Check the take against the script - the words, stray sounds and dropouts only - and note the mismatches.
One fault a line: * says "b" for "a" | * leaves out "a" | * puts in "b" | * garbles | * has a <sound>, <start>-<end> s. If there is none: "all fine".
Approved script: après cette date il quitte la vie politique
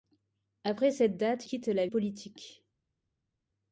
* leaves out "il"
* leaves out "vie"